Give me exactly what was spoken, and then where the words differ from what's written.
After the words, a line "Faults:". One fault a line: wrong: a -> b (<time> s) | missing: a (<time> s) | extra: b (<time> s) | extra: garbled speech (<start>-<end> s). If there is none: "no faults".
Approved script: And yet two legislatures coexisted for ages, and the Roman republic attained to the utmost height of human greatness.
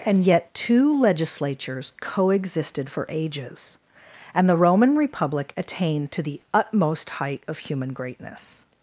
And yet two legislatures coexisted for ages, and the Roman republic attained to the utmost height of human greatness.
Faults:
no faults